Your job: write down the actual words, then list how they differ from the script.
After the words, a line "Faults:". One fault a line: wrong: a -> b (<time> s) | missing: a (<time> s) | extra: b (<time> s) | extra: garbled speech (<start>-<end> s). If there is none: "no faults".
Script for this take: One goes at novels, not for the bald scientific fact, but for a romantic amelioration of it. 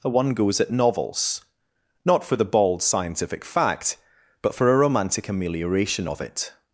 One goes at novels, not for the bald scientific fact, but for a romantic amelioration of it.
Faults:
no faults